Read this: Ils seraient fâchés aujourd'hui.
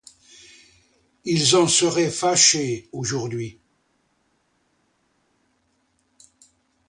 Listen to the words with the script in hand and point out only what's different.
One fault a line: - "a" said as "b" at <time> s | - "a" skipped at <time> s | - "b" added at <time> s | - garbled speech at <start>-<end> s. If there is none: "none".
- "en" added at 1.6 s